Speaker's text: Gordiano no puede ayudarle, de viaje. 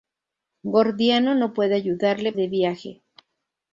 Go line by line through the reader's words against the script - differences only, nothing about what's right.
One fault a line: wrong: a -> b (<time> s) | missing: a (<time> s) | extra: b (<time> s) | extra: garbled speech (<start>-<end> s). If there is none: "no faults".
no faults